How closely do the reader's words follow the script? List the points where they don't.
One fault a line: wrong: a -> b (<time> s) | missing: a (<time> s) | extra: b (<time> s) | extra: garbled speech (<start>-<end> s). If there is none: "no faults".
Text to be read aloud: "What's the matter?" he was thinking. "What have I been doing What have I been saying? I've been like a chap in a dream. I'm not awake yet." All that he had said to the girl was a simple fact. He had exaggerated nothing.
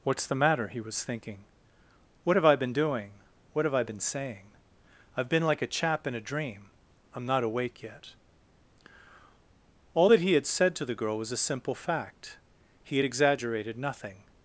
no faults